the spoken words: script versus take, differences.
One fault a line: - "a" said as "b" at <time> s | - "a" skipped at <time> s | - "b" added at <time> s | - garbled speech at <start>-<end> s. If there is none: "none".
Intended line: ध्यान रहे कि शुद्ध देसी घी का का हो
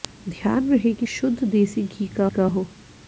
none